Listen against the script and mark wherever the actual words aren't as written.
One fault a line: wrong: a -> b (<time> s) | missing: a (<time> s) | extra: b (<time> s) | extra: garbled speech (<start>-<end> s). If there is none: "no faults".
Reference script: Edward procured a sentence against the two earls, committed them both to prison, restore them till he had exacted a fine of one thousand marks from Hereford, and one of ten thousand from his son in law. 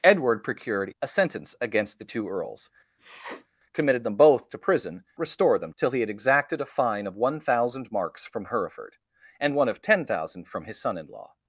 no faults